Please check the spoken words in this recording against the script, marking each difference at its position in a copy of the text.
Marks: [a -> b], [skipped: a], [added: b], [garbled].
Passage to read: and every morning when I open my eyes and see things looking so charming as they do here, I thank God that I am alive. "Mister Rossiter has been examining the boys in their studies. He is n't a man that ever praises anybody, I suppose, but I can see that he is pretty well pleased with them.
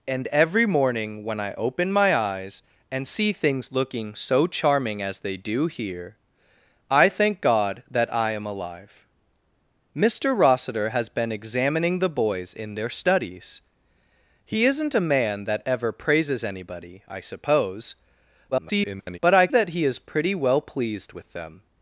and every morning when I open my eyes and see things looking so charming as they do here, I thank God that I am alive. "Mister Rossiter has been examining the boys in their studies. He is n't a man that ever praises anybody, I suppose, [garbled] but I [skipped: can see] that he is pretty well pleased with them.